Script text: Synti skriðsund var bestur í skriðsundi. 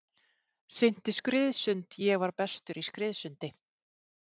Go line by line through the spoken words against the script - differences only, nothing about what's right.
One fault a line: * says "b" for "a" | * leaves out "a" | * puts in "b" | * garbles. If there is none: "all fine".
* puts in "ég"